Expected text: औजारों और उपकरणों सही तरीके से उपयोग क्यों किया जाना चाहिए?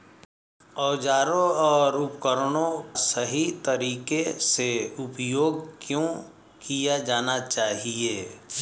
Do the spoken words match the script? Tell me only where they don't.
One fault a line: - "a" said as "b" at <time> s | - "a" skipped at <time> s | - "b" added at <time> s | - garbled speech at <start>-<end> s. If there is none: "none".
none